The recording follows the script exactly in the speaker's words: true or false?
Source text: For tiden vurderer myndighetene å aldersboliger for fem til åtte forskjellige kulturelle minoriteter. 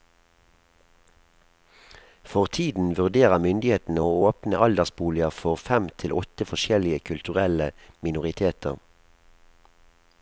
false